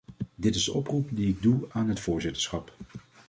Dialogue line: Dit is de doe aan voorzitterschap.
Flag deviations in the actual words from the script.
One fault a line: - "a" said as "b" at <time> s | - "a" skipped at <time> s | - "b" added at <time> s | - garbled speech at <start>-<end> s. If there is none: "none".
- "oproep die ik" added at 0.7 s
- "het" added at 1.9 s